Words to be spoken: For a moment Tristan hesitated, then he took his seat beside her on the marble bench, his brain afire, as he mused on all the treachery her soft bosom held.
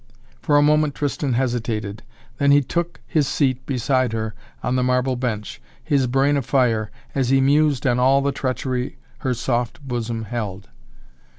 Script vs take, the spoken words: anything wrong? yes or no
no